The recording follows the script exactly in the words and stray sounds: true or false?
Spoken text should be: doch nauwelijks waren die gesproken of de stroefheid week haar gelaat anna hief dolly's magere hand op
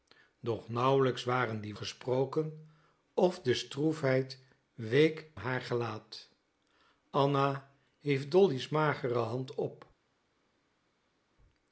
true